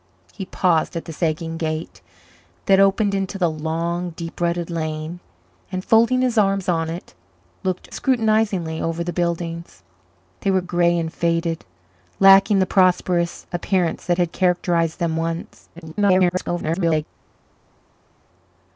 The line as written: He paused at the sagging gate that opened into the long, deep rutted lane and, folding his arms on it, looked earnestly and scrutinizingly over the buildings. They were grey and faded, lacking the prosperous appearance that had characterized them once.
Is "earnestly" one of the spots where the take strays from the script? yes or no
yes